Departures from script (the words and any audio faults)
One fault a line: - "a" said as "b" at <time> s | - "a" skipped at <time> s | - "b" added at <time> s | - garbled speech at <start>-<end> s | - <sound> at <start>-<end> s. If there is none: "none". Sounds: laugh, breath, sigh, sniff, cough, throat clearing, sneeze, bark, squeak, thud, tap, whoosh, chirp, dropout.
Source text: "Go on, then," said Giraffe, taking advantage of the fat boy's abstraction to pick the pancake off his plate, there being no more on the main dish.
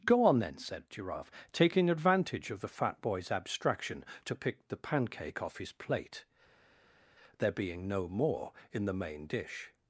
- "on" said as "in" at 8.7 s